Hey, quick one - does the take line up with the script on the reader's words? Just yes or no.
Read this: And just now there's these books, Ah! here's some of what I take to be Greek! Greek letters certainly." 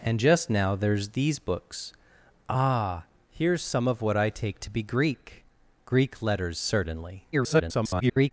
no